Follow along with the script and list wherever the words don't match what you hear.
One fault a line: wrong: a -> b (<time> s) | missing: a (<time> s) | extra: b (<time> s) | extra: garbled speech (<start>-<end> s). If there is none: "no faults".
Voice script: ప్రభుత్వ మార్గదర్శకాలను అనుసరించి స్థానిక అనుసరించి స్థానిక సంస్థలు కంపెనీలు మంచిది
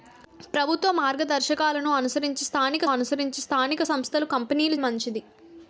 no faults